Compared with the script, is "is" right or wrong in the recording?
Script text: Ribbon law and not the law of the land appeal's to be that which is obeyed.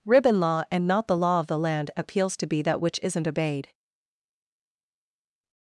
wrong